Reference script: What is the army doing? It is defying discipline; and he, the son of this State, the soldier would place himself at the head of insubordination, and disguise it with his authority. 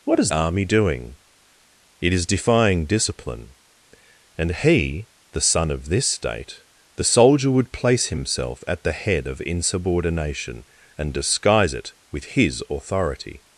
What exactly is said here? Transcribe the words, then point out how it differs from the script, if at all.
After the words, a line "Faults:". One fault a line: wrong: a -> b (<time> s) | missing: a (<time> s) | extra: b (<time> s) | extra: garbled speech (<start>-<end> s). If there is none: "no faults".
What is army doing? It is defying discipline; and he, the son of this State, the soldier would place himself at the head of insubordination, and disguise it with his authority.
Faults:
missing: the (0.3 s)